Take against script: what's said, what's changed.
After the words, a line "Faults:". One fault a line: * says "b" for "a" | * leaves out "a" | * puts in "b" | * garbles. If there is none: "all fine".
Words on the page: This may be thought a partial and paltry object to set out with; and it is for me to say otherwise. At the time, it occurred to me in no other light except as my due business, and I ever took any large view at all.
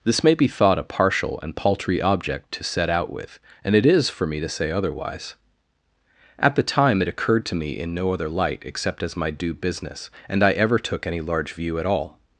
This may be thought a partial and paltry object to set out with; and it is for me to say otherwise. At the time, it occurred to me in no other light except as my due business, and I ever took any large view at all.
Faults:
all fine